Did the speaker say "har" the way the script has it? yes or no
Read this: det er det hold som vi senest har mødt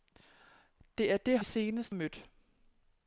no